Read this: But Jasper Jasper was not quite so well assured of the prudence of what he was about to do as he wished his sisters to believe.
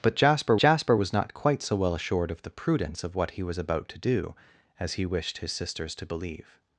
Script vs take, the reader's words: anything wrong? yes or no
no